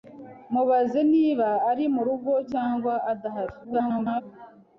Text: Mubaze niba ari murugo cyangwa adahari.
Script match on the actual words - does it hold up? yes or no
no